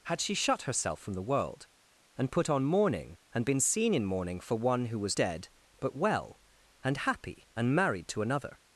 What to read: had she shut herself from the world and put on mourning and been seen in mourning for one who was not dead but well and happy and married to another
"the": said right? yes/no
yes